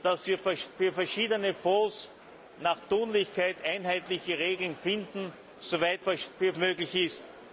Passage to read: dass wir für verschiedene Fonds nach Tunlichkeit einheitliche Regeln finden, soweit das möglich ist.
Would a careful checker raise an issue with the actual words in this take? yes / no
yes